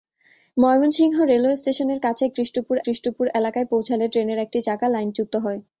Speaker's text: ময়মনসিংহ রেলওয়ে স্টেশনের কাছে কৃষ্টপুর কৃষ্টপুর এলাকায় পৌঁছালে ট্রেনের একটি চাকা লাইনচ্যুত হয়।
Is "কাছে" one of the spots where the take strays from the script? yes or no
no